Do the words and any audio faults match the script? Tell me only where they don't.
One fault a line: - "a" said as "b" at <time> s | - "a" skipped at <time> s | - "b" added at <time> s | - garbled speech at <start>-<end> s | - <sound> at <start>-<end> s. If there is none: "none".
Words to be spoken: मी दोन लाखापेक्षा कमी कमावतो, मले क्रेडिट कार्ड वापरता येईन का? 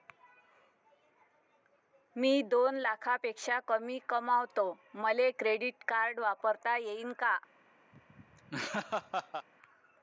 - laugh at 7.9-9.5 s